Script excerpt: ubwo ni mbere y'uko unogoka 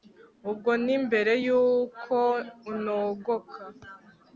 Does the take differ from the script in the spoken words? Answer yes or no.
no